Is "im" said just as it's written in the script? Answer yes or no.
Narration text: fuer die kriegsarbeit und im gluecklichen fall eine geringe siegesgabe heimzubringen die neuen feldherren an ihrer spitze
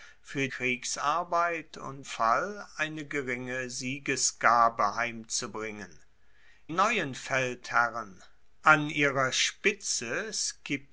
no